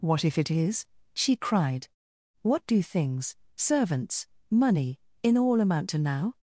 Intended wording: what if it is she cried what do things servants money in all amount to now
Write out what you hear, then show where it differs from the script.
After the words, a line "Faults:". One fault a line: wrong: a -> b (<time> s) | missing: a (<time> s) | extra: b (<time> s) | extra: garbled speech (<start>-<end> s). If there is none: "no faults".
what if it is she cried what do things servants money in all amount to now
Faults:
no faults